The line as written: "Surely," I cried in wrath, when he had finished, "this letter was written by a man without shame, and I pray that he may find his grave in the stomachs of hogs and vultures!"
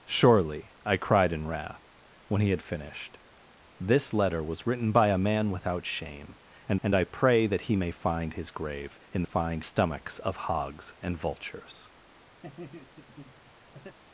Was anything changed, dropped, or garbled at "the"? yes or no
yes